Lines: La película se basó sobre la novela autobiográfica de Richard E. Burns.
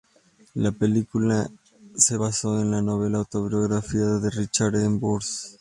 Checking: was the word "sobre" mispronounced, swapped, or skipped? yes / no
yes